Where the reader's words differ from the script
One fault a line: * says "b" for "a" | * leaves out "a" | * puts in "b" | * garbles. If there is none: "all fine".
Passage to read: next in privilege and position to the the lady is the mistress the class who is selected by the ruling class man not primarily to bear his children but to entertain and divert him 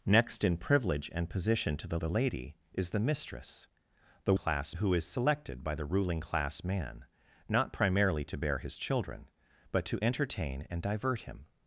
all fine